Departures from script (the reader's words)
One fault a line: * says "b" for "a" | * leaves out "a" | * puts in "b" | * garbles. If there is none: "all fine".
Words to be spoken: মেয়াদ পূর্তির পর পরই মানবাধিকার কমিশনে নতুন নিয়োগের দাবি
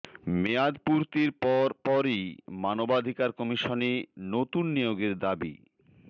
all fine